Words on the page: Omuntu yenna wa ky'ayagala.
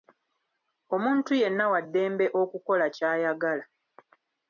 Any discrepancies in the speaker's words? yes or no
yes